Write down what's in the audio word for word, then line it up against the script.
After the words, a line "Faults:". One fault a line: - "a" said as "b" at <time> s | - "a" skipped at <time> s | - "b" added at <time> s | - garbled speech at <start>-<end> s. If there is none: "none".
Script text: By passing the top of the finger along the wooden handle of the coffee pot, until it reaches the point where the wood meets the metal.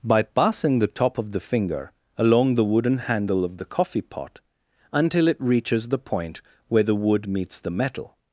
By passing the top of the finger along the wooden handle of the coffee pot, until it reaches the point where the wood meets the metal.
Faults:
none